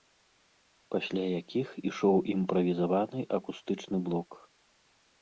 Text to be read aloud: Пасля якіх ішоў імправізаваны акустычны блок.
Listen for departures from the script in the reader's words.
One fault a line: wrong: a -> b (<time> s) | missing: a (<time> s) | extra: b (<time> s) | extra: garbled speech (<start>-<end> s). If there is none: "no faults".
no faults